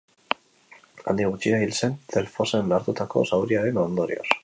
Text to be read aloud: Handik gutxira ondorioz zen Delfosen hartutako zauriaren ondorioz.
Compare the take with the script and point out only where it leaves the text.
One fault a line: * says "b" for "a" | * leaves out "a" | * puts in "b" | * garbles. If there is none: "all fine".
* says "hil" for "ondorioz"